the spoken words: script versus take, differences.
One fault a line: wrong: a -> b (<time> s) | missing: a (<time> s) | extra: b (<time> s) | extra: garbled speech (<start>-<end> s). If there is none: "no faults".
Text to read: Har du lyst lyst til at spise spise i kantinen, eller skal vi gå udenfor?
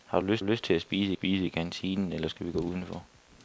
no faults